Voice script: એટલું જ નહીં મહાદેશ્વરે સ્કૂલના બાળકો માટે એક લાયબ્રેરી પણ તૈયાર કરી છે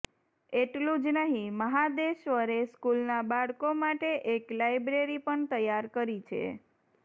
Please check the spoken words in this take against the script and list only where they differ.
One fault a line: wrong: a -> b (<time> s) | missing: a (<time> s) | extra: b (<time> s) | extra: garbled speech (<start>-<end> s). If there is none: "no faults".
no faults